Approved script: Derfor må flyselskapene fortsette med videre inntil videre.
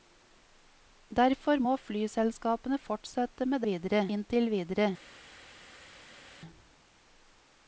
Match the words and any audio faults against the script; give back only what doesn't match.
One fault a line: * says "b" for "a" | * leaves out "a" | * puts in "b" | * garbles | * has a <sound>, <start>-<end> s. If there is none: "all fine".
all fine